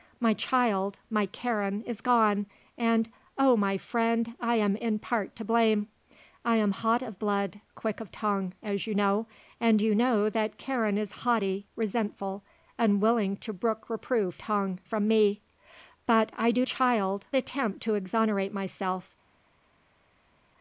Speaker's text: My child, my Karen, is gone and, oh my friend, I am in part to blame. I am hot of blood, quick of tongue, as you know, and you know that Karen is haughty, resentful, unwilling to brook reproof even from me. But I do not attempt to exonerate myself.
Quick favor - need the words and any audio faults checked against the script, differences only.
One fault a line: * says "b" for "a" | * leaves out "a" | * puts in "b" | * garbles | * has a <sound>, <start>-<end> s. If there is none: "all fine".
* says "tongue" for "even"
* says "child" for "not"